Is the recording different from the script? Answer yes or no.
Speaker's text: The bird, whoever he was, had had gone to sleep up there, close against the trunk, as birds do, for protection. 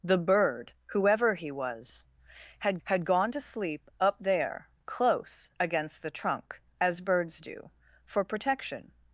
no